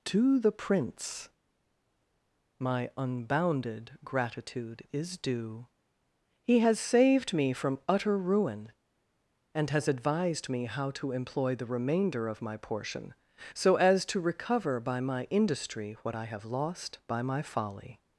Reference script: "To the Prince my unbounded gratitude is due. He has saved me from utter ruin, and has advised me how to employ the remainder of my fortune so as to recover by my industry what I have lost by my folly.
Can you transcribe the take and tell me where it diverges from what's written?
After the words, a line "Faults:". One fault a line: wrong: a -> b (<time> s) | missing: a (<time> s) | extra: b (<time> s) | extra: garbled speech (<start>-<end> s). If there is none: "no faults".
"To the Prince my unbounded gratitude is due. He has saved me from utter ruin, and has advised me how to employ the remainder of my portion so as to recover by my industry what I have lost by my folly.
Faults:
wrong: fortune -> portion (12.6 s)